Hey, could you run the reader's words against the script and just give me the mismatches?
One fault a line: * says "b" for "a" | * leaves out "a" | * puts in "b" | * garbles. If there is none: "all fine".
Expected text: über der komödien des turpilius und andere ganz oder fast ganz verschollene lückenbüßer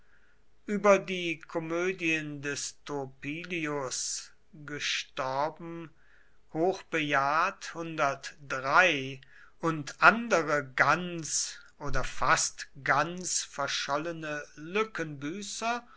* says "die" for "der"